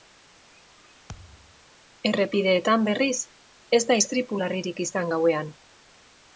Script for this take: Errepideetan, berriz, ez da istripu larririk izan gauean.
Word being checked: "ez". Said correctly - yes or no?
yes